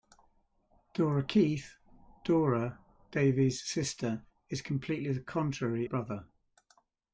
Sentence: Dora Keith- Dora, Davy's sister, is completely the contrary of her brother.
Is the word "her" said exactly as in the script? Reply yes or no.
no